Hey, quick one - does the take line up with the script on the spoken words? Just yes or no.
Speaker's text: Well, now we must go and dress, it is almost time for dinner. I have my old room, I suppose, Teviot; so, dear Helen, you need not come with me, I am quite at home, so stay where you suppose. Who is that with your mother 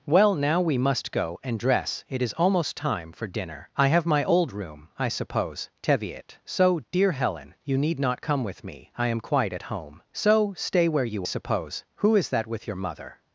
yes